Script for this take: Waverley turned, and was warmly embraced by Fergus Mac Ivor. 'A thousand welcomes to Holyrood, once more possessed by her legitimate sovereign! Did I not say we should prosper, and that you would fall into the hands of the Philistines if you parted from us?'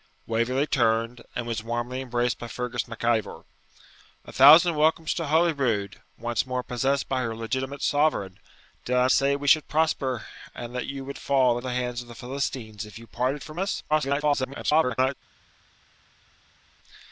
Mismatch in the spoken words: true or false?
true